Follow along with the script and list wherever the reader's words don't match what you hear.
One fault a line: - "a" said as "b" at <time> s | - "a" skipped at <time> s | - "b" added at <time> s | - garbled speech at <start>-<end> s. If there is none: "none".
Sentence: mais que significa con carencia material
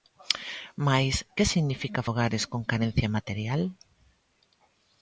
- "fogares" added at 2.1 s